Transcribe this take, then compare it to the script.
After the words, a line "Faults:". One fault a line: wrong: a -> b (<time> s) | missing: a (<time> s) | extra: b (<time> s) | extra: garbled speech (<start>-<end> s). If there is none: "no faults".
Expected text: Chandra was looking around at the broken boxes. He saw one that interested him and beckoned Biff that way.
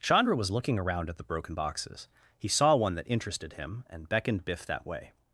Chandra was looking around at the broken boxes. He saw one that interested him and beckoned Biff that way.
Faults:
no faults